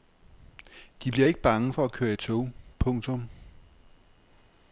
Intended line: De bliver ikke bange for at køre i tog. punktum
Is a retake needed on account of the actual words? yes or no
no